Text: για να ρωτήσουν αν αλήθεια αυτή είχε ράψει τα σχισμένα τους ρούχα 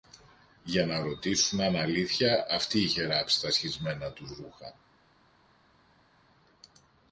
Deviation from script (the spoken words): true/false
false